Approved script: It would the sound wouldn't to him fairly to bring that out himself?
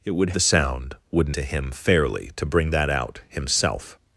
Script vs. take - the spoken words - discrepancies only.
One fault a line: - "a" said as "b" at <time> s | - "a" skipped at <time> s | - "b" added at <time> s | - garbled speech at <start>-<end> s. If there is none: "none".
none